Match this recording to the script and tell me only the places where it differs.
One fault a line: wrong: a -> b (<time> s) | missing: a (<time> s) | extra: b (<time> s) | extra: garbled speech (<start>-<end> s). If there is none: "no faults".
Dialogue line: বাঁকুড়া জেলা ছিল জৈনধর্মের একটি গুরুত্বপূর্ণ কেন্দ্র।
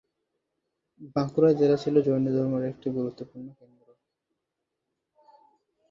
no faults